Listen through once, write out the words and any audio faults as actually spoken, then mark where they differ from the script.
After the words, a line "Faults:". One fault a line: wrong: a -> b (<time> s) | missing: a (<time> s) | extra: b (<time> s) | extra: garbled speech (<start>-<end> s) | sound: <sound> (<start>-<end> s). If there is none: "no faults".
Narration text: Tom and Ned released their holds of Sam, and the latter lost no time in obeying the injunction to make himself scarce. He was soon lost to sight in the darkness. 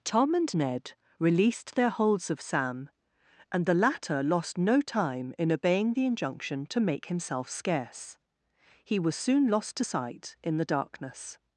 Tom and Ned released their holds of Sam, and the latter lost no time in obeying the injunction to make himself scarce. He was soon lost to sight in the darkness.
Faults:
no faults